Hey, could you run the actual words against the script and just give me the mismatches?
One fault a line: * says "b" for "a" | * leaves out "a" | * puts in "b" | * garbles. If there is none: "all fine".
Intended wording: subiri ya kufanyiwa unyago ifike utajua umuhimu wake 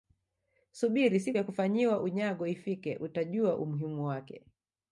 * puts in "siku"